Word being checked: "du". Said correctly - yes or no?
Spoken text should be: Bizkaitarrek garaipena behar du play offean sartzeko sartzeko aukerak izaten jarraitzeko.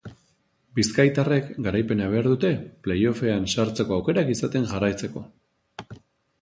no